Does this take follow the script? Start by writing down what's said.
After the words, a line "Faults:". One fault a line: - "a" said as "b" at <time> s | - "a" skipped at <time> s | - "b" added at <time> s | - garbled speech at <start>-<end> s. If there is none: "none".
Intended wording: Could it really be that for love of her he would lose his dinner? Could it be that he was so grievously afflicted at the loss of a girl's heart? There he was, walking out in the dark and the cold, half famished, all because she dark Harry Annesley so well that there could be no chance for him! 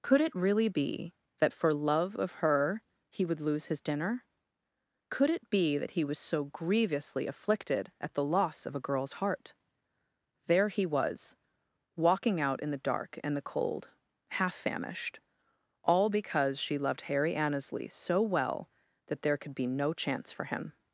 Could it really be that for love of her he would lose his dinner? Could it be that he was so grievously afflicted at the loss of a girl's heart? There he was, walking out in the dark and the cold, half famished, all because she loved Harry Annesley so well that there could be no chance for him!
Faults:
- "dark" said as "loved" at 16.8 s